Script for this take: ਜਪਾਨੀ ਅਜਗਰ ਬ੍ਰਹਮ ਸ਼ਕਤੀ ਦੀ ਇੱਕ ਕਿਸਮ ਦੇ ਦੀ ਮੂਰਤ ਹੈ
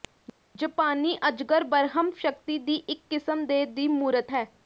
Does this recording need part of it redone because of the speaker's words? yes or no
no